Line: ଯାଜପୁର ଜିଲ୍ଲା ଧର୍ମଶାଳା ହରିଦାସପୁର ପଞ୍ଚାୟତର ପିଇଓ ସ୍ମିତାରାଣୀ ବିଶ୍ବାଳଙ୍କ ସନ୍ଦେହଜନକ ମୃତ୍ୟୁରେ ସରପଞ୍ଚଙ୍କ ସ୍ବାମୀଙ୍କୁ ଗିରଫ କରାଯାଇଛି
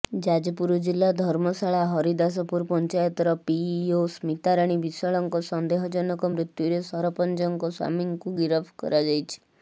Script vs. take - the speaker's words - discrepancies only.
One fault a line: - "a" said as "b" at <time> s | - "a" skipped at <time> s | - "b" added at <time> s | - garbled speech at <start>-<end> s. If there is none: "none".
none